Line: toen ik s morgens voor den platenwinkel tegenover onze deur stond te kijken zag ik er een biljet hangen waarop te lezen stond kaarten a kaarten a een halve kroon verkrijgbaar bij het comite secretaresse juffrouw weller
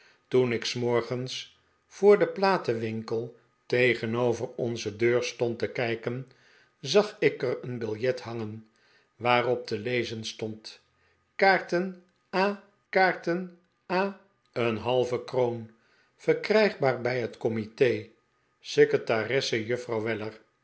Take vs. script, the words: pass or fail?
pass